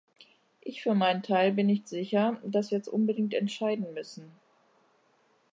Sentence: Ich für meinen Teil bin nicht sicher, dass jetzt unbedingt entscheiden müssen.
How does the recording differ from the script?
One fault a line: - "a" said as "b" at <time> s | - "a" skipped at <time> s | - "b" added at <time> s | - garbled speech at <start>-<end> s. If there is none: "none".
none